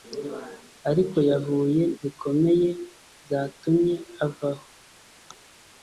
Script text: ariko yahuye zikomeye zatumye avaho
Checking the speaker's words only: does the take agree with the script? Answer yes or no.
yes